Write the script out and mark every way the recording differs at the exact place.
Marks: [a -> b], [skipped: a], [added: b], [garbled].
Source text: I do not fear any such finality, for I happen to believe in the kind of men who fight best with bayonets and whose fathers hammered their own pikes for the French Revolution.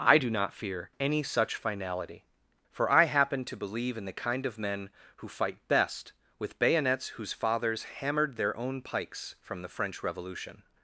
I do not fear any such finality, for I happen to believe in the kind of men who fight best with bayonets [skipped: and] whose fathers hammered their own pikes [for -> from] the French Revolution.